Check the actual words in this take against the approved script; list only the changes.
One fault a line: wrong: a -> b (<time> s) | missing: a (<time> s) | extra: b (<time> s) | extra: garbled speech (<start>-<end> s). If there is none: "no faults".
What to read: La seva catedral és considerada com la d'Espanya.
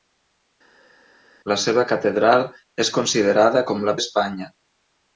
no faults